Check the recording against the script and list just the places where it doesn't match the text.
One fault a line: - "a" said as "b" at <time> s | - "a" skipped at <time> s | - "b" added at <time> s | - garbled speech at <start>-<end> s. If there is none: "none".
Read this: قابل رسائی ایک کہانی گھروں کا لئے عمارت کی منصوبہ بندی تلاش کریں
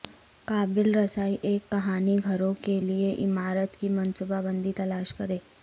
- "کا" said as "کے" at 2.6 s